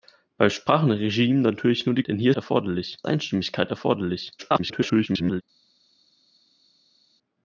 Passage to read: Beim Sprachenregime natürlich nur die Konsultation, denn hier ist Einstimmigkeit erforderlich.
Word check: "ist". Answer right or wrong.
wrong